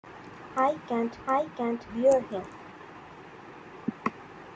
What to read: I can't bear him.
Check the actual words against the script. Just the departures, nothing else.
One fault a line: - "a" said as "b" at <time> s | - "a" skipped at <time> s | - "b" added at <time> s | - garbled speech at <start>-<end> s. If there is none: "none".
- "I can't" added at 1.3 s